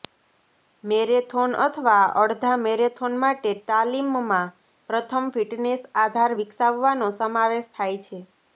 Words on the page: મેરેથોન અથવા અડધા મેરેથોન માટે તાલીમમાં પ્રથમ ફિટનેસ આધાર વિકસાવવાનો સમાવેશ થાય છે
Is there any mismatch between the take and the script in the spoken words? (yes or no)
no